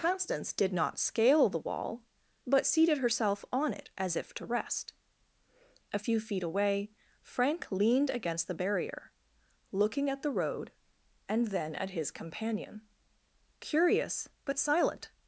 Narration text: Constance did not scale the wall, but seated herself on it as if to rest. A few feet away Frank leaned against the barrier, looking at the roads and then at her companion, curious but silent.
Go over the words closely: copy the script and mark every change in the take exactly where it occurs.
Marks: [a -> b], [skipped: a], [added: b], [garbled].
Constance did not scale the wall, but seated herself on it as if to rest. A few feet away Frank leaned against the barrier, looking at the [roads -> road] and then at [her -> his] companion, curious but silent.